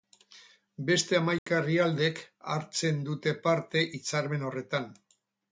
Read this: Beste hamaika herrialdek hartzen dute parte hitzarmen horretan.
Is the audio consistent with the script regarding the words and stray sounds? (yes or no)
no